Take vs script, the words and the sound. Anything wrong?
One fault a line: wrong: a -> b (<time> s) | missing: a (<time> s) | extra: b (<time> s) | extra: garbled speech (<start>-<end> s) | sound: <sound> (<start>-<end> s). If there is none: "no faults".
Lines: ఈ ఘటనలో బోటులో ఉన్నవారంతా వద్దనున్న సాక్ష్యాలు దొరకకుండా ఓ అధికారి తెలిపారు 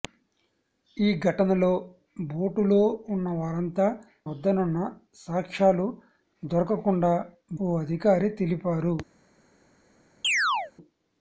sound: chirp (10.2-10.7 s)